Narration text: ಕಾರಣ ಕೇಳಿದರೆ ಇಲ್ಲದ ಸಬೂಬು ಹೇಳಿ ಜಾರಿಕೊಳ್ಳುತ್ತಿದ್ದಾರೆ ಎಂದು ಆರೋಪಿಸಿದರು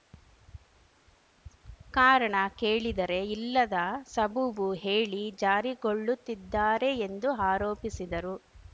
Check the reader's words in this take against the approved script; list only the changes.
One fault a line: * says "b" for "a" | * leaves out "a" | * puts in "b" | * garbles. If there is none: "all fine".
all fine